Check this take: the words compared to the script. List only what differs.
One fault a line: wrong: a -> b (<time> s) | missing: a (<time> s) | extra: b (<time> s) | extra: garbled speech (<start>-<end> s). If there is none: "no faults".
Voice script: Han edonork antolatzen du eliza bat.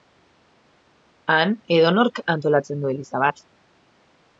no faults